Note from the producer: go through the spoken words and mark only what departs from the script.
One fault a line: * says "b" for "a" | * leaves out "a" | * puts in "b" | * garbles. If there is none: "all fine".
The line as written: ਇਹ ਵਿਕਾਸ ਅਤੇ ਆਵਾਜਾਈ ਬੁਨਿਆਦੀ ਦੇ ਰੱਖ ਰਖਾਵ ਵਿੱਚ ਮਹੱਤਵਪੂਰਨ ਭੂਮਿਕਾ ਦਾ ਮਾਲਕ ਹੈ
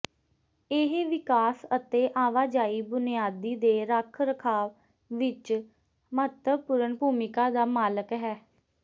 all fine